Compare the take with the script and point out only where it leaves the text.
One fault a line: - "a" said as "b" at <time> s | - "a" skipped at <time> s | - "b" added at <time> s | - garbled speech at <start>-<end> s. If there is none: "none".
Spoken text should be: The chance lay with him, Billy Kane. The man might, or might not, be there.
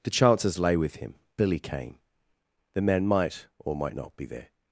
- "chance" said as "chances" at 0.1 s